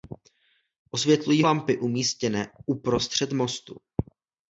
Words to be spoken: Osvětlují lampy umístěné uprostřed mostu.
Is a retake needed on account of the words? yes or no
no